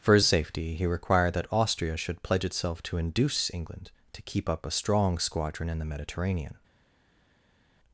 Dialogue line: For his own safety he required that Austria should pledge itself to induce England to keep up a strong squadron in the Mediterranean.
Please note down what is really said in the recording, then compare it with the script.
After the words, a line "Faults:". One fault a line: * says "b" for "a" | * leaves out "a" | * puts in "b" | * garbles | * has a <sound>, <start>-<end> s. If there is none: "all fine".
For his safety he required that Austria should pledge itself to induce England to keep up a strong squadron in the Mediterranean.
Faults:
* leaves out "own"